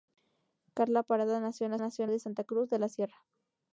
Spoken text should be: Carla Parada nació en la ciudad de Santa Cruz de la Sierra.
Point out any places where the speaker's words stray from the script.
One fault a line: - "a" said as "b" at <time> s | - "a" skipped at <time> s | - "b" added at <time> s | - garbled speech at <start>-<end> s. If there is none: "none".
- "ciudad" said as "nació" at 1.8 s